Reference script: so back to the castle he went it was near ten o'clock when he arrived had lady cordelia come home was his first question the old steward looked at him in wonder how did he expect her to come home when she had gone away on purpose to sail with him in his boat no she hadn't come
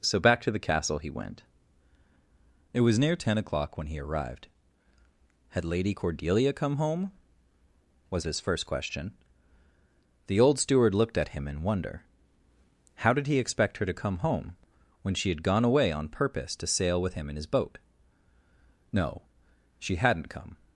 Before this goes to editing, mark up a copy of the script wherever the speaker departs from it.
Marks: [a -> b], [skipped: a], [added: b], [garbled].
so back to the castle he went it was near ten o'clock when he arrived had lady cordelia come home was his first question the old steward looked at him in wonder how did he expect her to come home when she had gone away on purpose to sail with him in his boat no she hadn't come